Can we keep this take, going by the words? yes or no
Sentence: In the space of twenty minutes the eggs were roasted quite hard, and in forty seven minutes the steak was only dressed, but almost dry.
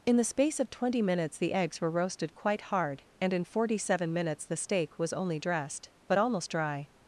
yes